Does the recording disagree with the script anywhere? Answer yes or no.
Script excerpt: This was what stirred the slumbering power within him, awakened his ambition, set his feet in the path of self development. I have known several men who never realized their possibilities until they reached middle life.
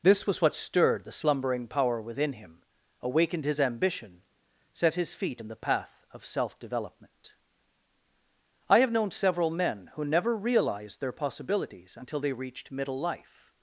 no